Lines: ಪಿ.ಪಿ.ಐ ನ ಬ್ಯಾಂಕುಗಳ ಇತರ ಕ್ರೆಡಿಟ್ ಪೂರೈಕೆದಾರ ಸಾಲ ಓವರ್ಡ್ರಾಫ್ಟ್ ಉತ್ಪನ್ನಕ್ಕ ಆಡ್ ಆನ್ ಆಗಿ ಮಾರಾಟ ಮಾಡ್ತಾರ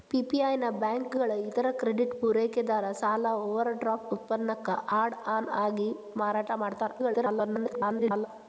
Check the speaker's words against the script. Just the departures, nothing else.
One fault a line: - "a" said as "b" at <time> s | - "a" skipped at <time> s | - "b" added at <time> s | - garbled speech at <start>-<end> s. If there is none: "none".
- garbled speech at 7.0-8.3 s